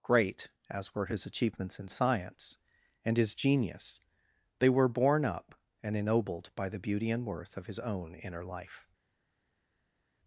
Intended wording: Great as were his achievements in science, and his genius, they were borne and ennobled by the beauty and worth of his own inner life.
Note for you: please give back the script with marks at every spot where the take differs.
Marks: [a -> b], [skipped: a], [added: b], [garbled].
Great as were his achievements in science, and his genius, they were borne [added: up] and ennobled by the beauty and worth of his own inner life.